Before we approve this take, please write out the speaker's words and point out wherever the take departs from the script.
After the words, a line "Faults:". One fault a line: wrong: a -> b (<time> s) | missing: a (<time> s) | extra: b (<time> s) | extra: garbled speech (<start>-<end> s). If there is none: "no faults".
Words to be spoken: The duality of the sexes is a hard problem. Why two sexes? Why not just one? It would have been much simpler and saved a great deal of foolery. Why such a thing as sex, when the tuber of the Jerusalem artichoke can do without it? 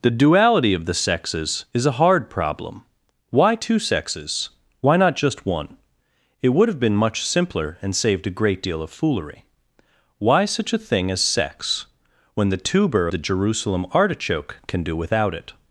The duality of the sexes is a hard problem. Why two sexes? Why not just one? It would have been much simpler and saved a great deal of foolery. Why such a thing as sex, when the tuber the Jerusalem artichoke can do without it?
Faults:
missing: of (13.1 s)